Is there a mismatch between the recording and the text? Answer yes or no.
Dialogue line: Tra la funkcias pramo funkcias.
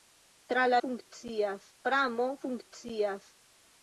no